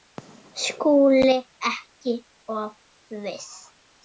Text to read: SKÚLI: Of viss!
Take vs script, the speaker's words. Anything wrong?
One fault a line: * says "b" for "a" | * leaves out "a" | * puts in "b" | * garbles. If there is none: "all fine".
* puts in "Ekki"